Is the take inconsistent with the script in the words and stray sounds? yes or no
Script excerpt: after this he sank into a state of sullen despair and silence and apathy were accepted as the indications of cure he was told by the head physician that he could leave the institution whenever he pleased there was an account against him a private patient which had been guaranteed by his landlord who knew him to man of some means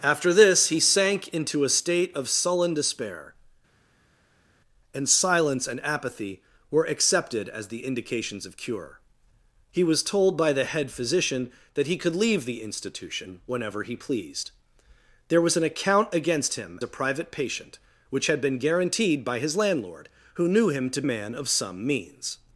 no